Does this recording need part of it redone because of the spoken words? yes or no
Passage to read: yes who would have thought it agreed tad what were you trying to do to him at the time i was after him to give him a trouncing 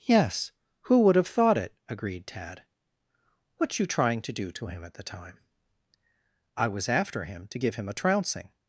yes